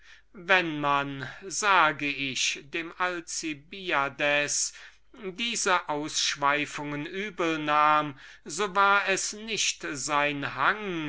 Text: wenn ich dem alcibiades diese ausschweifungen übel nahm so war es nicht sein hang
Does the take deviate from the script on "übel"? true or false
false